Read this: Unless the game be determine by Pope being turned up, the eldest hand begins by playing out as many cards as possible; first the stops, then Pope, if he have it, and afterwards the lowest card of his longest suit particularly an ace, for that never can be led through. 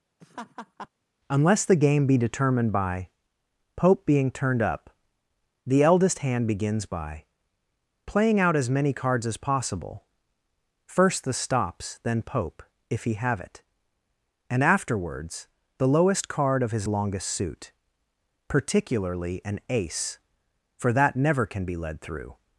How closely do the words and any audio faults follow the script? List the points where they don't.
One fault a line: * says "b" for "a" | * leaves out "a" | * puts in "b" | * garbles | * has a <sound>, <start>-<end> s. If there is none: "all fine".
* has a laugh, 0.2-0.9 s
* says "determined" for "determine"